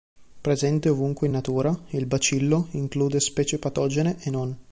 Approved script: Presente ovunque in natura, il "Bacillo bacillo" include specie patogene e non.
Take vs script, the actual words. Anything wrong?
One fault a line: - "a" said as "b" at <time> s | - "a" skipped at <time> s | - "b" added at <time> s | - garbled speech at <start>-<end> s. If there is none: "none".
- "bacillo" skipped at 2.7 s